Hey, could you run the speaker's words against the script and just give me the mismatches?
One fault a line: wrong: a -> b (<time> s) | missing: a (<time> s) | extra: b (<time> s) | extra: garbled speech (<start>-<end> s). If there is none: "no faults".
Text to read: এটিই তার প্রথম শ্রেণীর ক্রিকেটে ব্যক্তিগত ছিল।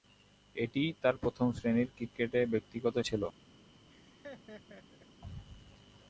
no faults